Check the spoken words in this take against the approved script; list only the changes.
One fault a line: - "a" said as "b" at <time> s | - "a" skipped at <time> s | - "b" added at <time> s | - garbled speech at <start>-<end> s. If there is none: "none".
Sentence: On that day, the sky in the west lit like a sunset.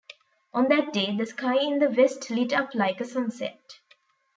- "up" added at 2.5 s